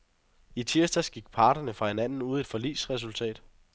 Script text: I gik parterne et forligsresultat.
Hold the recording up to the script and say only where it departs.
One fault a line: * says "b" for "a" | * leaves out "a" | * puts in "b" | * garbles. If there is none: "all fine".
* puts in "tirsdags"
* puts in "fra hinanden uden"